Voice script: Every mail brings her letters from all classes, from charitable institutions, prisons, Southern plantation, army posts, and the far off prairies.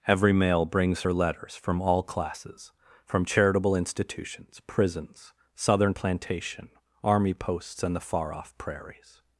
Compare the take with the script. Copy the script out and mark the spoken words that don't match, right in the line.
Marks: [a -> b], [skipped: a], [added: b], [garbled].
Every mail brings her letters from all classes, from charitable institutions, prisons, Southern plantation, army posts, and the far off prairies.